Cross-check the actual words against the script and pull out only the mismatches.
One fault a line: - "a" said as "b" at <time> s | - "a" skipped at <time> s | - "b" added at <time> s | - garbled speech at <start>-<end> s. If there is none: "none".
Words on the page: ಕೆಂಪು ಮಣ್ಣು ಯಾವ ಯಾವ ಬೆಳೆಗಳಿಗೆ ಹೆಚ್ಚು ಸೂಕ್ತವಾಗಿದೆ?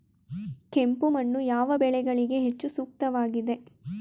- "ಯಾವ" skipped at 1.7 s